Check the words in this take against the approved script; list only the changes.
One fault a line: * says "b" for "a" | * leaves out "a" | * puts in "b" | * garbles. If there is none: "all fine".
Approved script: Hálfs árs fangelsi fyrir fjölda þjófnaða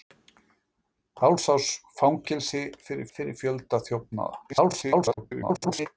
* puts in "fyrir"
* garbles